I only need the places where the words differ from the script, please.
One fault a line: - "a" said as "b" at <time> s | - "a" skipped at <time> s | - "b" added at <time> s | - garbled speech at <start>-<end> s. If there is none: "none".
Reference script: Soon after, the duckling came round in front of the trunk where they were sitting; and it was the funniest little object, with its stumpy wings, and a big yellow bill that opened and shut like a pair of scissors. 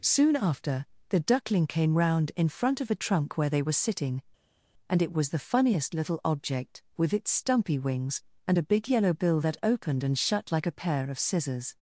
none